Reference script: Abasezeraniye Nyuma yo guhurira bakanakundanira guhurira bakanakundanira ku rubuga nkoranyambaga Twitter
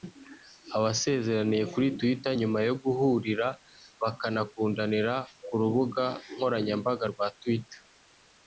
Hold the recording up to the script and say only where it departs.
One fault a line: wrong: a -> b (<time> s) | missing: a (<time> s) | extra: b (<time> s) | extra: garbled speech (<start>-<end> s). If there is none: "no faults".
extra: kuri Twitter (1.7 s)
missing: guhurira bakanakundanira (5.1 s)
extra: rwa (7.1 s)